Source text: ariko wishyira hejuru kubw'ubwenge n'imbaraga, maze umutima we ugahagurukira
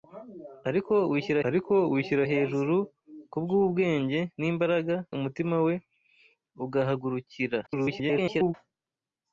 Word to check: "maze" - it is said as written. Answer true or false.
false